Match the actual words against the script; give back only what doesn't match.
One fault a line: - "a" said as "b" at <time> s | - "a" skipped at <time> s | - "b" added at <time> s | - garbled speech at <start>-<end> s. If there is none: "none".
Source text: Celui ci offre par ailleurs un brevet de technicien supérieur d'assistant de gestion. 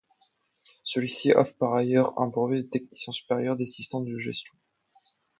none